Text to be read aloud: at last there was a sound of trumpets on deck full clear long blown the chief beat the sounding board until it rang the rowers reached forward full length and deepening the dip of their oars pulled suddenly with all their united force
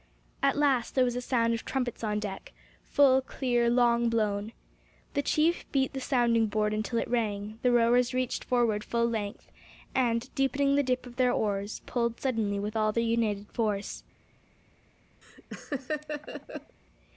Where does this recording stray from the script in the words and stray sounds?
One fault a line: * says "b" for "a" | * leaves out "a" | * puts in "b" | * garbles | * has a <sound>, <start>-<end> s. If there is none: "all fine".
* has a laugh, 15.2-16.8 s